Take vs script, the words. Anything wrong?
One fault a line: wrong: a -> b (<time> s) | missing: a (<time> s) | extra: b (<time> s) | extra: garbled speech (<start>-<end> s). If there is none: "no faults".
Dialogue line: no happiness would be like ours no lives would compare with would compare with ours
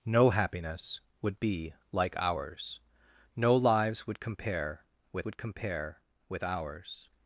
no faults